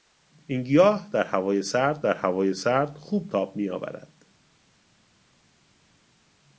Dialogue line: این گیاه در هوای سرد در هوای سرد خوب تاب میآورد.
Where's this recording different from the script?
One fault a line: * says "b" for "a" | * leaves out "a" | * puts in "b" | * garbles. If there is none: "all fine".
all fine